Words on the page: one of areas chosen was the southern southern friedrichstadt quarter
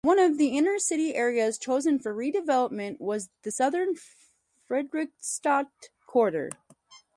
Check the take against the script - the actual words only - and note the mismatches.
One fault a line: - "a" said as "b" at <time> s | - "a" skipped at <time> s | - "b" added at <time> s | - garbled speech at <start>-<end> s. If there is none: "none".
- "the inner city" added at 0.4 s
- "for redevelopment" added at 2.0 s
- "southern" skipped at 4.0 s